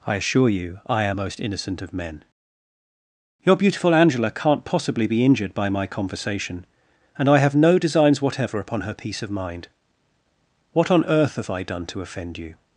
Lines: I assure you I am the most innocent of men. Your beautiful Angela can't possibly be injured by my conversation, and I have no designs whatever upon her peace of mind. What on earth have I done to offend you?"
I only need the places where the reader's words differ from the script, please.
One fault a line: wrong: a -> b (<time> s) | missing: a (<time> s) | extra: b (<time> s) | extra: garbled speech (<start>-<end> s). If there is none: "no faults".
missing: the (1.2 s)